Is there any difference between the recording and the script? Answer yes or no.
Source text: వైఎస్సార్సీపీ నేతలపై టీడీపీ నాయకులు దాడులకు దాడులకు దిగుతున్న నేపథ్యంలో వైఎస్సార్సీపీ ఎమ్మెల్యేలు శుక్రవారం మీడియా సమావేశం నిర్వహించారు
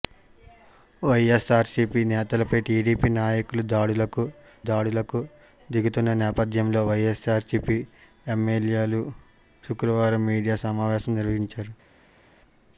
no